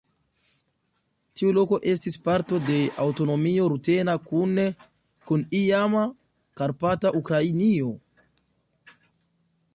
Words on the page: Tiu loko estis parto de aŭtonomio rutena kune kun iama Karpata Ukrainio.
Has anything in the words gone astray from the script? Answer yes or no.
no